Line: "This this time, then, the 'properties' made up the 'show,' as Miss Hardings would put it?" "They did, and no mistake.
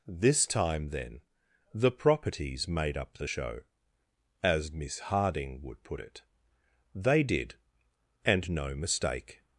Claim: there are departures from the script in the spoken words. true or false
true